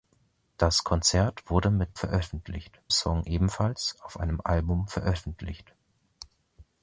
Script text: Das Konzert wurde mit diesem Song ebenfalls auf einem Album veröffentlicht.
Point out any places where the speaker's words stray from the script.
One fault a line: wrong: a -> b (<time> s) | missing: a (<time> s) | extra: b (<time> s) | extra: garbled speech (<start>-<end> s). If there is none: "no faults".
wrong: diesem -> veröffentlicht (1.9 s)